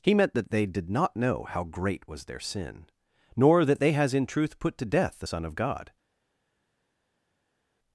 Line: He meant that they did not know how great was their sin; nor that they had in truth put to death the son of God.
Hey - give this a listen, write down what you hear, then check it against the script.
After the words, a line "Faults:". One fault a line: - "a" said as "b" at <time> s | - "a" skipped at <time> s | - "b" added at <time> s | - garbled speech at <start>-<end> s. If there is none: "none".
He meant that they did not know how great was their sin; nor that they has in truth put to death the son of God.
Faults:
- "had" said as "has" at 3.9 s